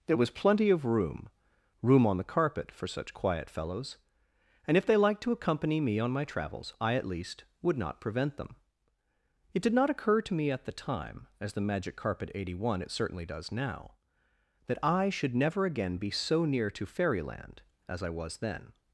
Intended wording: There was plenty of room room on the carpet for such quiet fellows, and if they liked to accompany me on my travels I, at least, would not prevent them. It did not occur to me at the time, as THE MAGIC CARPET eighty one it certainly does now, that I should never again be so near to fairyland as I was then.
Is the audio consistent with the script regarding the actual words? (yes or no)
yes